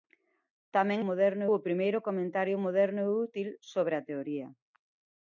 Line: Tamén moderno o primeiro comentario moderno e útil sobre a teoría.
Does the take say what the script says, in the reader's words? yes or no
yes